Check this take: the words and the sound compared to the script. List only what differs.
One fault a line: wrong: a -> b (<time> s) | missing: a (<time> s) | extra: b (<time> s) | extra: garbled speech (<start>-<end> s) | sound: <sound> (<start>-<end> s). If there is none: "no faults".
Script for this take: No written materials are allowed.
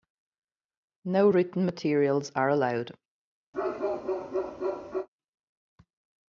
sound: bark (3.5-5.1 s)